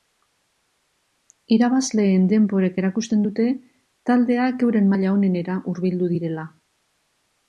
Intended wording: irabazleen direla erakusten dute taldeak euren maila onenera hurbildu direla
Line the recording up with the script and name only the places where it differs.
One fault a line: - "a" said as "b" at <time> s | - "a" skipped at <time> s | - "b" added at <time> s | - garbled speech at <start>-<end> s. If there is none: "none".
- "direla" said as "denborek" at 2.3 s